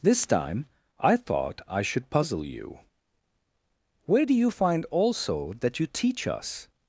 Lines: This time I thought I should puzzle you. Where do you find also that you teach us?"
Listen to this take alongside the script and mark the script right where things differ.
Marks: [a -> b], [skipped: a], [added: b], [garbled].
This time I thought I should puzzle you. Where do you find also that you teach us?"